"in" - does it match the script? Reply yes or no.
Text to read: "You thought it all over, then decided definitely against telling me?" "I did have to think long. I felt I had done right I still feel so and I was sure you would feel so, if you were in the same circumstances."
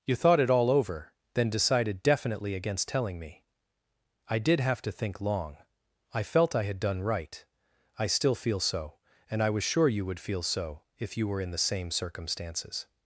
yes